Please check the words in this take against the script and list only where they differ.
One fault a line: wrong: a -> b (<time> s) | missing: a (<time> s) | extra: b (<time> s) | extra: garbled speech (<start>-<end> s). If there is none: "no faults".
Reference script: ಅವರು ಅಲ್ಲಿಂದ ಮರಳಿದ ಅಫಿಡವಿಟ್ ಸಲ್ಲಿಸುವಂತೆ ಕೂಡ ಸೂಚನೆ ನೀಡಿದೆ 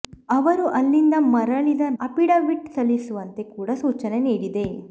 no faults